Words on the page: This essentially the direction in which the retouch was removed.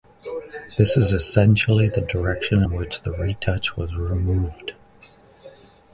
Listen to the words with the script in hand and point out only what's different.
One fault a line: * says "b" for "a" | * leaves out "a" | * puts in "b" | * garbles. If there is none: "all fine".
* puts in "is"